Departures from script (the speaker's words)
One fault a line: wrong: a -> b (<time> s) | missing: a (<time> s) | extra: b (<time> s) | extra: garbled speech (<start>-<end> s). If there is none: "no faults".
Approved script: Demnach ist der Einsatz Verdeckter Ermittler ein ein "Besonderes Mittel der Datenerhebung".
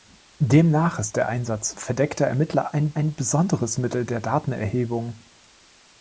no faults